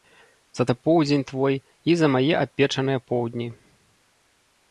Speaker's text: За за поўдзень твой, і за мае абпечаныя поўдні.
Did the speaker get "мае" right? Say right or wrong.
right